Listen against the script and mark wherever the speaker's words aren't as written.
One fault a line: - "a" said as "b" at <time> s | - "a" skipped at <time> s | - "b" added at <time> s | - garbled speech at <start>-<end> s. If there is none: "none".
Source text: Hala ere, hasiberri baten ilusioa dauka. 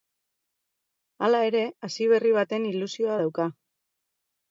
none